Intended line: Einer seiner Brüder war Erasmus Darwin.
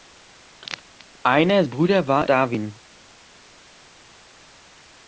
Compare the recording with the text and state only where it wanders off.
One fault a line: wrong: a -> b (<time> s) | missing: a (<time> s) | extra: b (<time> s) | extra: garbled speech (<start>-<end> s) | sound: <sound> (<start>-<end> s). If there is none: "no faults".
missing: seiner (1.6 s)
missing: Erasmus (2.3 s)